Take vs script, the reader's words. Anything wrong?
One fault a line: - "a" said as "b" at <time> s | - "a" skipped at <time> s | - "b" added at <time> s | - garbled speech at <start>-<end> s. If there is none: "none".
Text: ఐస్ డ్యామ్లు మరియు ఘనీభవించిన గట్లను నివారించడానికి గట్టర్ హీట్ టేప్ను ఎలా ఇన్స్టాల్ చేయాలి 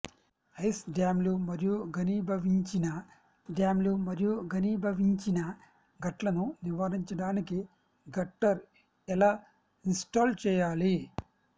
- "డ్యామ్లు మరియు ఘనీభవించిన" added at 3.5 s
- "హీట్ టేప్ను" skipped at 8.6 s